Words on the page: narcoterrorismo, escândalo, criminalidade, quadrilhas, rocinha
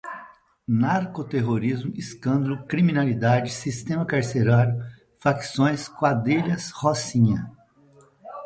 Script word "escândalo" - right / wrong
right